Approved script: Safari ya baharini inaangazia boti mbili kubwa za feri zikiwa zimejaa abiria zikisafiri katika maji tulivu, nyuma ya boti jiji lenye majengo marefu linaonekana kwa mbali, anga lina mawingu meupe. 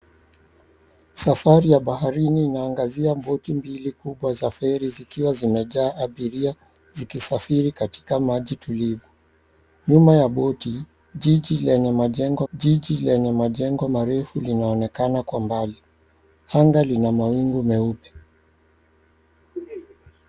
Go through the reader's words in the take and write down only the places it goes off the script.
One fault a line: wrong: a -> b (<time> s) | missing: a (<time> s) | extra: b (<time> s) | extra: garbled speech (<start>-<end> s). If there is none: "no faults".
extra: jiji lenye majengo (12.5 s)